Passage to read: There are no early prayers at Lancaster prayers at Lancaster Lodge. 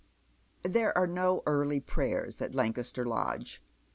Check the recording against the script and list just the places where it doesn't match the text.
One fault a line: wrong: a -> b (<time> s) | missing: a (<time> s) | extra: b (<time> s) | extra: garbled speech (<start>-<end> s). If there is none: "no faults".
missing: prayers at Lancaster (3.0 s)